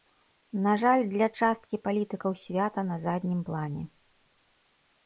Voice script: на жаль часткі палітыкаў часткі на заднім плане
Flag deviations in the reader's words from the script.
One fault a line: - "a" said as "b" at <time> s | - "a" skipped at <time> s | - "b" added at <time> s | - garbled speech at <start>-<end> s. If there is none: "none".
- "для" added at 1.1 s
- "часткі" said as "свята" at 2.4 s